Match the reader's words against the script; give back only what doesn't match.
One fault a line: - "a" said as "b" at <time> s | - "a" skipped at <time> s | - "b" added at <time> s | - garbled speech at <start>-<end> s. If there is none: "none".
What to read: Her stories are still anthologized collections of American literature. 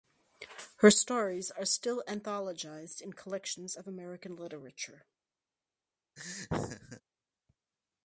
- "in" added at 3.0 s